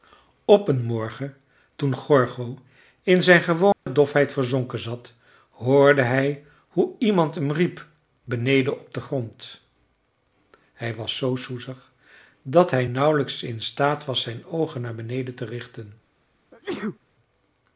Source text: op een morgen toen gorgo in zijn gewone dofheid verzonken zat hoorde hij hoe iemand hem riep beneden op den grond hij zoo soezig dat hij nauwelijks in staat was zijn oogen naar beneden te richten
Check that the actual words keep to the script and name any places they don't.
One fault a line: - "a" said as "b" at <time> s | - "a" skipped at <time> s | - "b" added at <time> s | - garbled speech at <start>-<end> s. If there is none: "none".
- "was" added at 10.9 s